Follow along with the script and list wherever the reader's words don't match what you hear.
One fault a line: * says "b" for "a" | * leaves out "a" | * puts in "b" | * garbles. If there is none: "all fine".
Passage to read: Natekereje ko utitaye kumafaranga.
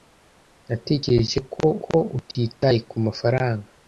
* puts in "ko"